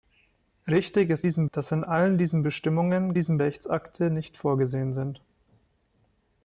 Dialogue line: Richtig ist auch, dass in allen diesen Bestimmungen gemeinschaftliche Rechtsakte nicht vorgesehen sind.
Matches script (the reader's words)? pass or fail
fail